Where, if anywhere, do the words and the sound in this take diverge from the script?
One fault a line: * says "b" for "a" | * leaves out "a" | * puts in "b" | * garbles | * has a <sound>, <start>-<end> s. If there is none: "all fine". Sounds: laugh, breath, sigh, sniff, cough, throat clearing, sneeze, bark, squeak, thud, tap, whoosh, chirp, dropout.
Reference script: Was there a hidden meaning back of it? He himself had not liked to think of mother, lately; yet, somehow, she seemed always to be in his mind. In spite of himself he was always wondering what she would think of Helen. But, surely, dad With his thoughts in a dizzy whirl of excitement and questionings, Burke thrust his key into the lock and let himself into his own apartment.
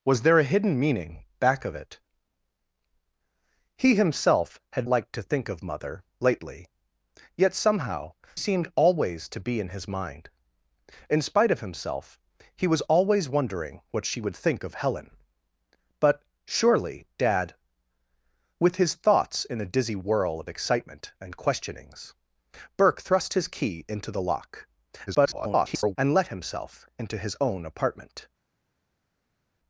* leaves out "not"
* leaves out "she"
* garbles